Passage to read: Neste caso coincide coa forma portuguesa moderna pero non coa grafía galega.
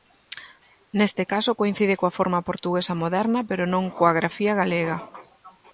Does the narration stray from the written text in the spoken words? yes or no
no